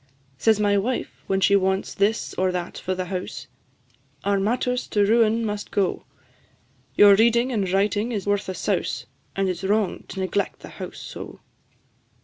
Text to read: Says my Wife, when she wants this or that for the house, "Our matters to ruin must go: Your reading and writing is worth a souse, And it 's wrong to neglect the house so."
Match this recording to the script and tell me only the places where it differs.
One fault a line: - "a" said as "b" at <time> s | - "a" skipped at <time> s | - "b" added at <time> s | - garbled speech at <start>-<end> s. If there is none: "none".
none